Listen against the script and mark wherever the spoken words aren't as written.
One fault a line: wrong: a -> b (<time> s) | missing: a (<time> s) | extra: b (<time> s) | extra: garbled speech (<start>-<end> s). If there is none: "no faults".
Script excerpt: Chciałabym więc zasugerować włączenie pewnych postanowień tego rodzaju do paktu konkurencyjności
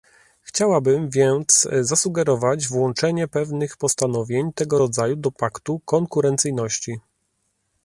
no faults